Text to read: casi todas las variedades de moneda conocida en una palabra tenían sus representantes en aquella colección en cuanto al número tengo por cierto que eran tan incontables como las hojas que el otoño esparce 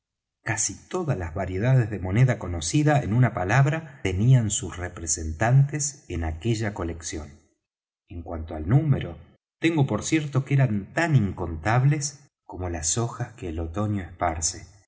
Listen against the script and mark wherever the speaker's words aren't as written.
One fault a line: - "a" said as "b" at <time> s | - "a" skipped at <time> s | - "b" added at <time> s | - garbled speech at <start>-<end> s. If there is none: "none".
none